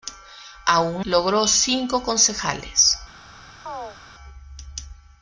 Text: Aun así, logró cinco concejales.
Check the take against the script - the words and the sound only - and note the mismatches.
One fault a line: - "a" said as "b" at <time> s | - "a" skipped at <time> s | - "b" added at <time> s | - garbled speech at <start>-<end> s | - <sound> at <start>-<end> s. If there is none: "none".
- "así" skipped at 1.1 s
- chirp at 3.7-4.0 s